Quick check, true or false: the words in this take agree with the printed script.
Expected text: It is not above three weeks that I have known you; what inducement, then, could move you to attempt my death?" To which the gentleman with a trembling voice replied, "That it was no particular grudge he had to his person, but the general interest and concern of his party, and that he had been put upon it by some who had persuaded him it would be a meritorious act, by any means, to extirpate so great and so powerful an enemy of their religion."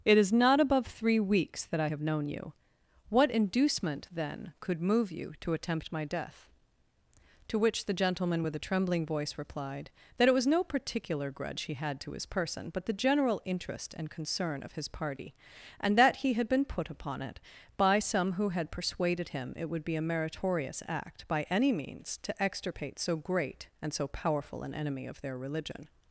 true